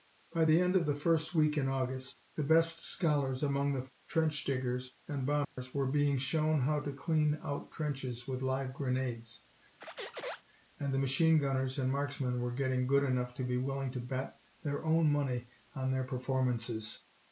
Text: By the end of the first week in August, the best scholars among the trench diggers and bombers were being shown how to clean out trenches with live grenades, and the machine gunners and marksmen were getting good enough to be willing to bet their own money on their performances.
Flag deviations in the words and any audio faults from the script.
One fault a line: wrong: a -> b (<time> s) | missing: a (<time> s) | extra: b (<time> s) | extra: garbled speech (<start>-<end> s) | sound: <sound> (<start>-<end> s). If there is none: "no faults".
sound: dropout (5.4-5.6 s)
sound: squeak (9.8-10.4 s)